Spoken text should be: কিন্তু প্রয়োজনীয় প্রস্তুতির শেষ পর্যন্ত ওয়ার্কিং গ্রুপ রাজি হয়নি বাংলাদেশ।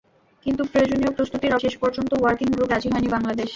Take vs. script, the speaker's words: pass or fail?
pass